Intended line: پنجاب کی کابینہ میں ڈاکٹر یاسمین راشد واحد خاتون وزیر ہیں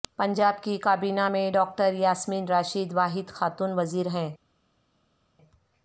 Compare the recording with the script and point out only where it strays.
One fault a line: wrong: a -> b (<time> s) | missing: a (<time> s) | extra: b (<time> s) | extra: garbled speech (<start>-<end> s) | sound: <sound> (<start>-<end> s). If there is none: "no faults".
no faults